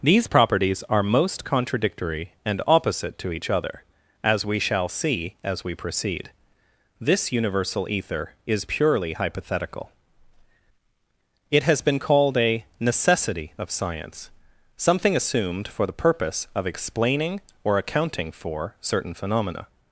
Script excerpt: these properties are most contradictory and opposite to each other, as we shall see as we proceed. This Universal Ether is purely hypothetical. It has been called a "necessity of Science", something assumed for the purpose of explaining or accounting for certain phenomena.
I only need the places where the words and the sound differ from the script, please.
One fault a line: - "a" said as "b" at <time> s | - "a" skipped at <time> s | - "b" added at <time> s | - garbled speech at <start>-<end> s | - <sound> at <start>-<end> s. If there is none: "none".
none